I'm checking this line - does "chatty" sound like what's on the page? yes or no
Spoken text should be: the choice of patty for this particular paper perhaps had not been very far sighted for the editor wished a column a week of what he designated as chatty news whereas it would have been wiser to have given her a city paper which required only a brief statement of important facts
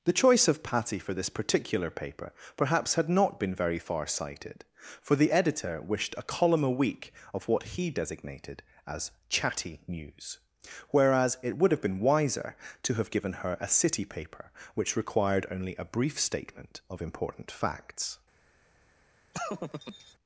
yes